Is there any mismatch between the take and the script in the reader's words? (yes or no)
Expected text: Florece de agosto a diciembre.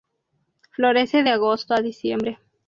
no